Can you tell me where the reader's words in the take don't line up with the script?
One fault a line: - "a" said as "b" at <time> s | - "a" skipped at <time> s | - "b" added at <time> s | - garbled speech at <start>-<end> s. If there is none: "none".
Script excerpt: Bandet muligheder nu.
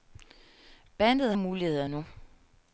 none